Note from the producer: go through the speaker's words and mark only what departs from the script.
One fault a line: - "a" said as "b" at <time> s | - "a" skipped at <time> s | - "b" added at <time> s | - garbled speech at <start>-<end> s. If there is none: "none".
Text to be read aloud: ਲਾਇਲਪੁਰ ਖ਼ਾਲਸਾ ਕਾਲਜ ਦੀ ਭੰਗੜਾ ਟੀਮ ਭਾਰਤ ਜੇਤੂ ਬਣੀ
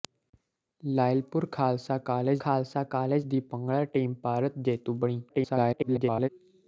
- "ਖ਼ਾਲਸਾ ਕਾਲਜ" added at 2.4 s
- garbled speech at 5.3-6.3 s